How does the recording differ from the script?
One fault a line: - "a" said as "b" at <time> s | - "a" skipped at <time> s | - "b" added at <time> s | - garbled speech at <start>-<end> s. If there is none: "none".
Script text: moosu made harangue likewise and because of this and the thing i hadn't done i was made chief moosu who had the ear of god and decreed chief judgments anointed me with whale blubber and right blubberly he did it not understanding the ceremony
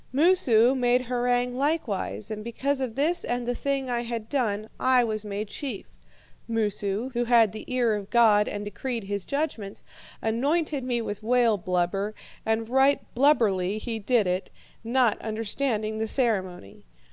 - "hadn't" said as "had" at 4.0 s
- "chief" said as "his" at 9.0 s